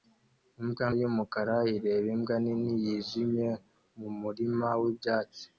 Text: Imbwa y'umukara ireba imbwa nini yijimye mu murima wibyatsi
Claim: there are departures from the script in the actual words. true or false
false